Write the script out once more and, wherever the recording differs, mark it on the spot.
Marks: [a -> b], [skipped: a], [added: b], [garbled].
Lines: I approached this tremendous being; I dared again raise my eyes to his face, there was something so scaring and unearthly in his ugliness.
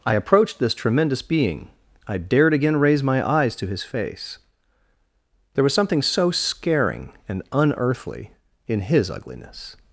I approached this tremendous being; I dared again raise my eyes to his face, there was something so scaring and unearthly in his ugliness.